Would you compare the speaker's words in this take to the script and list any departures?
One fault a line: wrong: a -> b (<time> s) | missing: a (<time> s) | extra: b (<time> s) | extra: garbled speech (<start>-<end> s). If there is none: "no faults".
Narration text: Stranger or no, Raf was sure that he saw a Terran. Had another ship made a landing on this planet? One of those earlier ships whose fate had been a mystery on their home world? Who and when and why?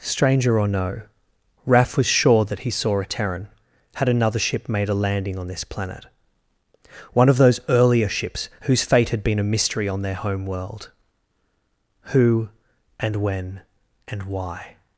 no faults